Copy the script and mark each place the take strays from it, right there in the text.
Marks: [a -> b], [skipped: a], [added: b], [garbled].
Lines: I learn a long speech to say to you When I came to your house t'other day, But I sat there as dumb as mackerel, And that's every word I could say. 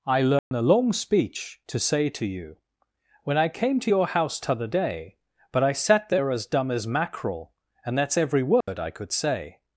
I learn a long speech to say to you When I came to your house t'other day, But I sat there as dumb as mackerel, And that's every word I could say.